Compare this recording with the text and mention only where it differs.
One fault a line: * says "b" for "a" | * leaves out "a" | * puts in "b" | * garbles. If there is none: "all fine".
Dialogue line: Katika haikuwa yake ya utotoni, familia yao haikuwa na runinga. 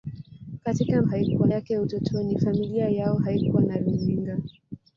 all fine